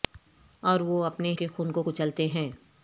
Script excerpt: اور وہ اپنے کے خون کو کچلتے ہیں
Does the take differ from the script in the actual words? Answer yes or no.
no